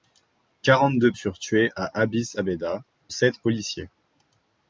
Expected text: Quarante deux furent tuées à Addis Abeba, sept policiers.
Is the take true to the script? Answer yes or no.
yes